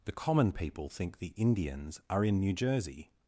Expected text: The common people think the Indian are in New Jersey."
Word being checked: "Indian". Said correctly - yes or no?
no